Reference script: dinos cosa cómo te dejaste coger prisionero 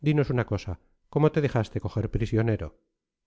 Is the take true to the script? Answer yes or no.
no